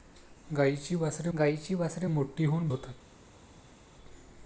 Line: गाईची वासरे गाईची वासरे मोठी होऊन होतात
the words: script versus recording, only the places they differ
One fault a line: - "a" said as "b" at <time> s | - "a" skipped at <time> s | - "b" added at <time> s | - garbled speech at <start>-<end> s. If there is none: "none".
none